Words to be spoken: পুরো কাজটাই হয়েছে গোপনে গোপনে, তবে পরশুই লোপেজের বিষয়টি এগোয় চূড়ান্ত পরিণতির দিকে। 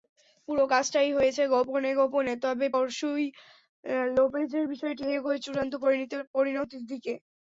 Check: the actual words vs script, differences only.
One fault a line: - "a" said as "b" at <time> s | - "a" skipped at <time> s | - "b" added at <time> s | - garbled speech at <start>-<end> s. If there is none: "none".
none